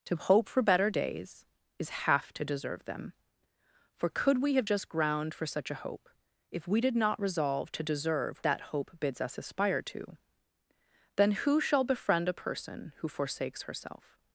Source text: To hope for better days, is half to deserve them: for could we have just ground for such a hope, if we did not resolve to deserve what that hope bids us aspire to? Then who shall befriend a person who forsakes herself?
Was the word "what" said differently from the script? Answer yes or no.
yes